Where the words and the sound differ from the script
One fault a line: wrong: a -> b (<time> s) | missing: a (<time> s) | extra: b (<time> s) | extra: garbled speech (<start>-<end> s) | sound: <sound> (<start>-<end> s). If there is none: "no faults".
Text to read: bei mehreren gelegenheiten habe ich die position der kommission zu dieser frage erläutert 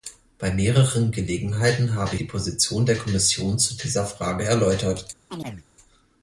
missing: ich (2.1 s)
sound: chirp (5.3-5.6 s)